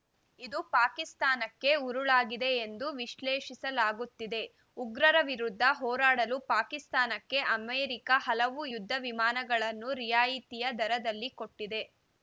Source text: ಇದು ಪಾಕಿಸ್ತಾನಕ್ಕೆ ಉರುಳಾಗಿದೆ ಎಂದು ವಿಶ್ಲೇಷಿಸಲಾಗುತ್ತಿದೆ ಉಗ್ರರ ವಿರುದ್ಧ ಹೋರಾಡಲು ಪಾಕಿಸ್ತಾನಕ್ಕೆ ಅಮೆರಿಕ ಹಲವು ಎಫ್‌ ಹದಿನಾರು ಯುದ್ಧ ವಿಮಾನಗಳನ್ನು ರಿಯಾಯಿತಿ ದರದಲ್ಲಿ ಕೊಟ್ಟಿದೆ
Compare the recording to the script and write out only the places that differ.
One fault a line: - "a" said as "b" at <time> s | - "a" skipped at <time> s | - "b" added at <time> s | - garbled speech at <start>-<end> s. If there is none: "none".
- "ಎಫ್ ಹದಿನಾರು" skipped at 8.6 s